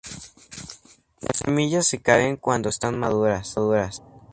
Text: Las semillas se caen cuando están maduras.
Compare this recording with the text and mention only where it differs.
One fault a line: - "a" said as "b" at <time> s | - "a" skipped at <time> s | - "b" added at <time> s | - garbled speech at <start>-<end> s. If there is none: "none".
none